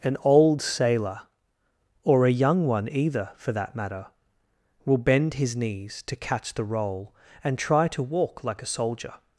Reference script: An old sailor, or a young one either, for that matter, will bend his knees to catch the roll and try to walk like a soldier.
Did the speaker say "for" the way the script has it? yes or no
yes